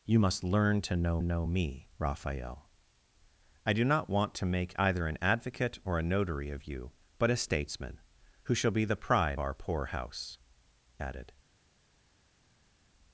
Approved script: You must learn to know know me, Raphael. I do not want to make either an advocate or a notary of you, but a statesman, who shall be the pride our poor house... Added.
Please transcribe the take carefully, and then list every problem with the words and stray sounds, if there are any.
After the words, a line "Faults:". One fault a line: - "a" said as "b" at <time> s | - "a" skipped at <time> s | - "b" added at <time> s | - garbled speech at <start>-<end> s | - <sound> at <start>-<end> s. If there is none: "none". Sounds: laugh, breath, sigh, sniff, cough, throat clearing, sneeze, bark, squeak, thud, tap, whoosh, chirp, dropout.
You must learn to know know me, Raphael. I do not want to make either an advocate or a notary of you, but a statesman, who shall be the pride our poor house... Added.
Faults:
none